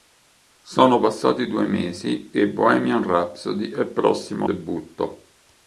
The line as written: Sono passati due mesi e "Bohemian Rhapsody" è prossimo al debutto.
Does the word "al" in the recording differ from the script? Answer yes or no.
yes